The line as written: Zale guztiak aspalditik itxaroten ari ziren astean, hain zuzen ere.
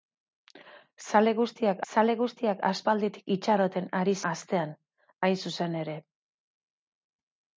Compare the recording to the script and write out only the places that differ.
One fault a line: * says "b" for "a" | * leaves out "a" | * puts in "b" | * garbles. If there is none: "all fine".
* puts in "zale guztiak"
* leaves out "ziren"